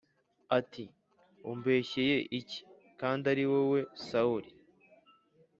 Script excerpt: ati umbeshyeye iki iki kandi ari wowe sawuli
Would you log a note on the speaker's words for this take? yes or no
yes